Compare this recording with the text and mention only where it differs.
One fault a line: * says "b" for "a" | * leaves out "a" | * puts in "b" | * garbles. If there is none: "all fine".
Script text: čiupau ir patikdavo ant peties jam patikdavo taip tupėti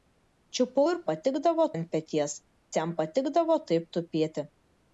all fine